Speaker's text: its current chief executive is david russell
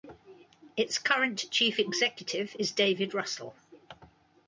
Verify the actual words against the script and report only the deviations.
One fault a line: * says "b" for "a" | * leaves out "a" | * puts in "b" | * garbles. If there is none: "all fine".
all fine